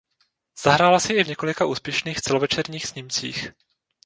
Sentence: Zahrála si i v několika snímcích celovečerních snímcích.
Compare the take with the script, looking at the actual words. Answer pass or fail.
fail